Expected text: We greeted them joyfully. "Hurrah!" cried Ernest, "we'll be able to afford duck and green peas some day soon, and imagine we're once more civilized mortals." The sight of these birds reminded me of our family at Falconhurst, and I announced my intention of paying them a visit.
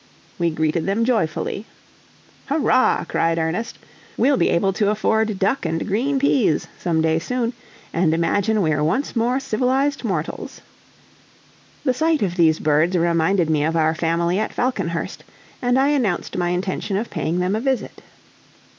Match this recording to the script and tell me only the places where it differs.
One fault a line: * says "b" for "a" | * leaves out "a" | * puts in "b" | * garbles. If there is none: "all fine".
all fine